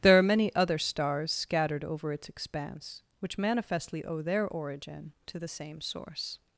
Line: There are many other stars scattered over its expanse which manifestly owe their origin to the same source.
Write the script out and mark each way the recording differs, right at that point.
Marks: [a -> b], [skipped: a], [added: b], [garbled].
There are many other stars scattered over its expanse which manifestly owe their origin to the same source.